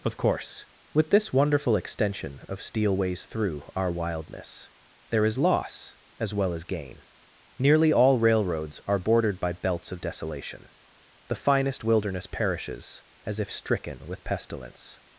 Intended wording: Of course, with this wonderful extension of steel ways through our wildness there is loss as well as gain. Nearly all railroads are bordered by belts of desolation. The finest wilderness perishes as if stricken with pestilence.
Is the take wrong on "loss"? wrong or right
right